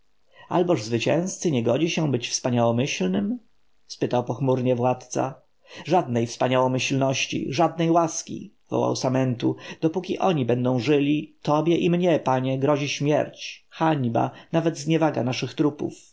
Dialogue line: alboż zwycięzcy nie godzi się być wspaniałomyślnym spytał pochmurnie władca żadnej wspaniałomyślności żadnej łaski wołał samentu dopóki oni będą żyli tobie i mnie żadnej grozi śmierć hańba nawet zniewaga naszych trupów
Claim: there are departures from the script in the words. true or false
true